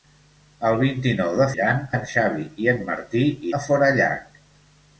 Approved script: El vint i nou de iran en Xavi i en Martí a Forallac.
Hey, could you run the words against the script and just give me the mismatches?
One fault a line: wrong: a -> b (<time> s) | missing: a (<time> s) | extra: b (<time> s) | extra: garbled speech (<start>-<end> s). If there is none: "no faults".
no faults